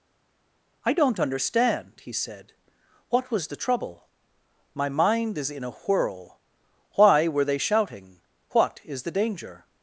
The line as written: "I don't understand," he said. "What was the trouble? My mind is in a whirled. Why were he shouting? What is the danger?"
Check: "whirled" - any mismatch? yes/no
yes